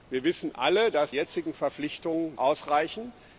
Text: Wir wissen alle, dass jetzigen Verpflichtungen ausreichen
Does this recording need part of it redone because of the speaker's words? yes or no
no